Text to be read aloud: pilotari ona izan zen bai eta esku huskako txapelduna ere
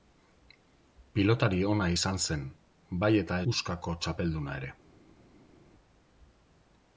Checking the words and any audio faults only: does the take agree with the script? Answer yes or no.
no